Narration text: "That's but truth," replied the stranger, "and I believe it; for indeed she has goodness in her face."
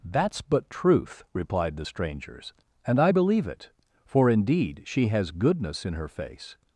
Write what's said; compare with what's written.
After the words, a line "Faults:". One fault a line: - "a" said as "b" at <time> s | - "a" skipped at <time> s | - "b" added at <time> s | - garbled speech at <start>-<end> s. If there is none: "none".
"That's but truth," replied the strangers, "and I believe it; for indeed she has goodness in her face."
Faults:
- "stranger" said as "strangers" at 1.8 s